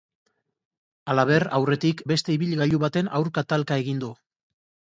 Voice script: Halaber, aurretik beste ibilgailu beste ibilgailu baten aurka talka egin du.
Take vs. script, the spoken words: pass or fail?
fail